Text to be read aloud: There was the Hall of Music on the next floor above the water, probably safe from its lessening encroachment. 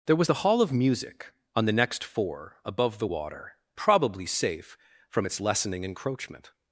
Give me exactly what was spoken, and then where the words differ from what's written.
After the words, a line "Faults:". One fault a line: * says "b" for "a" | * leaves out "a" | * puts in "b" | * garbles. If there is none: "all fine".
There was the Hall of Music on the next four above the water, probably safe from its lessening encroachment.
Faults:
* says "four" for "floor"